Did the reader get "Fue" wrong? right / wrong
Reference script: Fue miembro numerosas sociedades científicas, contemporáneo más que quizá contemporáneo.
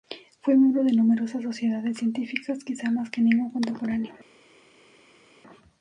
right